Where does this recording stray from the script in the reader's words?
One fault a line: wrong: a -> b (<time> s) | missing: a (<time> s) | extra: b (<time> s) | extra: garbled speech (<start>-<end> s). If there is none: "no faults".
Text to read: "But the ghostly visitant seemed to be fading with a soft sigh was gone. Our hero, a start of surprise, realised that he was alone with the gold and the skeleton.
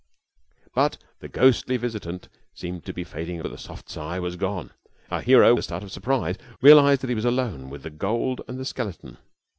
no faults